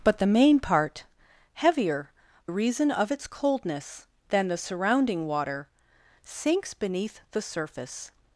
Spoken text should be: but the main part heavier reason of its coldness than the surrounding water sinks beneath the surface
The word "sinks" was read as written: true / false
true